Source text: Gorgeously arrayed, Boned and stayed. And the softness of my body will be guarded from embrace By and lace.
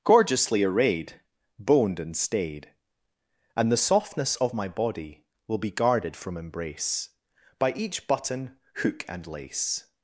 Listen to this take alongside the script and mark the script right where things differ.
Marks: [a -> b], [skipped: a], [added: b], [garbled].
Gorgeously arrayed, Boned and stayed. And the softness of my body will be guarded from embrace By [added: each button hook] and lace.